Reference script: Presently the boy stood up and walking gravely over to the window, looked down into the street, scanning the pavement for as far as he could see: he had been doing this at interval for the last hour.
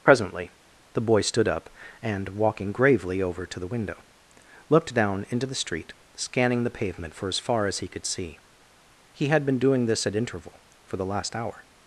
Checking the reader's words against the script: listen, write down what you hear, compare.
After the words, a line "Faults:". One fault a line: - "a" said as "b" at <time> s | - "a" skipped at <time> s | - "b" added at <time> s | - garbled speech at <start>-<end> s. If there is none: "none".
Presently the boy stood up and walking gravely over to the window, looked down into the street, scanning the pavement for as far as he could see: he had been doing this at interval for the last hour.
Faults:
none